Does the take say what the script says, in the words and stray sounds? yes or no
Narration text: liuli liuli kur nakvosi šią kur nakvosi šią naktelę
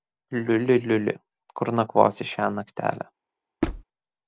no